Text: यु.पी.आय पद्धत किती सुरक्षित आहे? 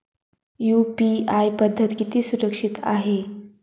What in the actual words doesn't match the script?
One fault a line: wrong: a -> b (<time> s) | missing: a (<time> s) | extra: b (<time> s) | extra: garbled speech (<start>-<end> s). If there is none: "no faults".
no faults